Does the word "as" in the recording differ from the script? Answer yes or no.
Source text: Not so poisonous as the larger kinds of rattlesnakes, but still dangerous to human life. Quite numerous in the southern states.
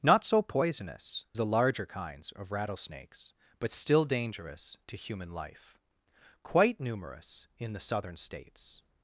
yes